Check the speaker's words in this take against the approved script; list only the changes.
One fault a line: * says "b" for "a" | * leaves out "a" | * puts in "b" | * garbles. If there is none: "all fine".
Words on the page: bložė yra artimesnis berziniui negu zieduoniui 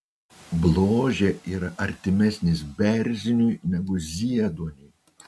all fine